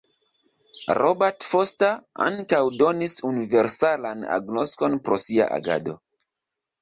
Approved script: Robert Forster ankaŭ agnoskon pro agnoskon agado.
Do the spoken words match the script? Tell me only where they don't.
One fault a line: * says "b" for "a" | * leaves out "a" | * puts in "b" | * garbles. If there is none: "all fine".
* puts in "donis universalan"
* says "sia" for "agnoskon"